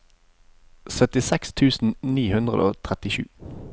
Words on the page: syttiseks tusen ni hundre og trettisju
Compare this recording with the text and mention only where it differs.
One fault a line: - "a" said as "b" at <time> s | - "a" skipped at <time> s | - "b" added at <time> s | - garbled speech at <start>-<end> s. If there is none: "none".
none